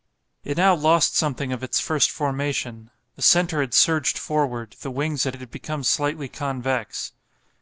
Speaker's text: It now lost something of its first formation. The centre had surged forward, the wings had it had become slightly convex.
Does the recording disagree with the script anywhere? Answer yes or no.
no